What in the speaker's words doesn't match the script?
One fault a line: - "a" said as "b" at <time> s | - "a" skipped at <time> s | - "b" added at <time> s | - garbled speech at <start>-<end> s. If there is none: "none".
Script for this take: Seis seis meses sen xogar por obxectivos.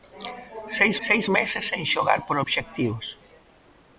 none